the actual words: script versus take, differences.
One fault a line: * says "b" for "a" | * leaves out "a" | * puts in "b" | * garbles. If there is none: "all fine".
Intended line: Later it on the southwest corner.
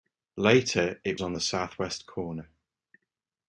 all fine